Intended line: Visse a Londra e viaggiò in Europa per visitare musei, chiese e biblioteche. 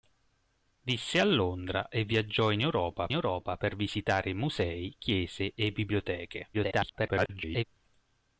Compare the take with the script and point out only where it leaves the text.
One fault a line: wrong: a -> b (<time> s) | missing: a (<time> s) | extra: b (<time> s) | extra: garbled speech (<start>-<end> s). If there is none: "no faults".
extra: Europa (3.1 s)
extra: garbled speech (6.5-7.6 s)